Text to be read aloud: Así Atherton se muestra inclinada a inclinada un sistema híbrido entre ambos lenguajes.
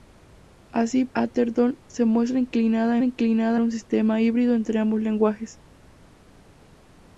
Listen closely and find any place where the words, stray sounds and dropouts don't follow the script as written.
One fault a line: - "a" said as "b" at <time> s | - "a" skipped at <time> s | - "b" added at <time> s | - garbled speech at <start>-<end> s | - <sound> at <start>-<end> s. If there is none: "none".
none